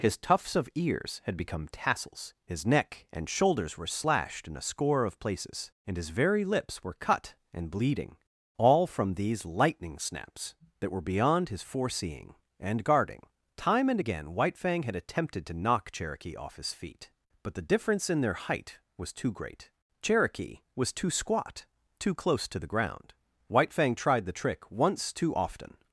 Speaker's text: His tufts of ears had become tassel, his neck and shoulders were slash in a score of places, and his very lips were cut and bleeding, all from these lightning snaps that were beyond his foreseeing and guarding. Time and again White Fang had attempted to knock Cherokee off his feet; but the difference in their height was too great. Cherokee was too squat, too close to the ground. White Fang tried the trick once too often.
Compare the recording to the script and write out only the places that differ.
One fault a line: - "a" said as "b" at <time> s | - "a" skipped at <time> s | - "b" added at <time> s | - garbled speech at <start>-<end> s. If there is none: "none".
- "tassel" said as "tassels" at 1.7 s
- "slash" said as "slashed" at 3.9 s